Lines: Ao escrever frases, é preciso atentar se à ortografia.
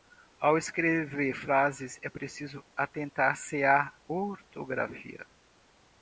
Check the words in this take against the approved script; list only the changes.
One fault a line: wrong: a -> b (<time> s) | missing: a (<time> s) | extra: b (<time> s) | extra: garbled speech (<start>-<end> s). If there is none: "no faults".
no faults